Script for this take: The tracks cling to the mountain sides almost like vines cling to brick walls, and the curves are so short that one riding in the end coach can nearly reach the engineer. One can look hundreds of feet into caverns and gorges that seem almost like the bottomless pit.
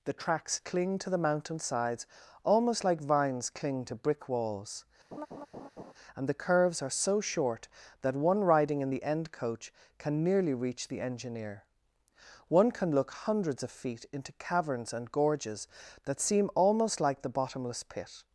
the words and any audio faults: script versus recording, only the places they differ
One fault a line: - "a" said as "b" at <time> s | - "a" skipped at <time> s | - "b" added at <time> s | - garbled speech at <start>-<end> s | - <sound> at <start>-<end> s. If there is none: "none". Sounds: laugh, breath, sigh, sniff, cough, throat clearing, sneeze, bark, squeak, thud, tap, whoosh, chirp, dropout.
- laugh at 5.1-5.9 s